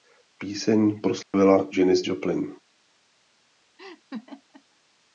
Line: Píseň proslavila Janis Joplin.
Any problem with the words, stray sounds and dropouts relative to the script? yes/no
yes